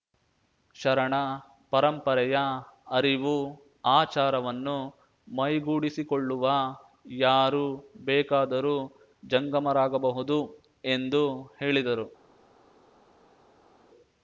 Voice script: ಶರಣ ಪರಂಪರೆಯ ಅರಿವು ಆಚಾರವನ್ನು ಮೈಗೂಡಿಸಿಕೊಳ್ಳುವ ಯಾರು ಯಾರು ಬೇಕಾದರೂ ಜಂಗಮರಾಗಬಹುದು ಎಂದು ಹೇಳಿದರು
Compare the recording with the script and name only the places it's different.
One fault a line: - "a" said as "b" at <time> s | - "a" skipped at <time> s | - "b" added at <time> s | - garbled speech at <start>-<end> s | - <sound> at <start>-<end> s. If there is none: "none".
- "ಯಾರು" skipped at 7.6 s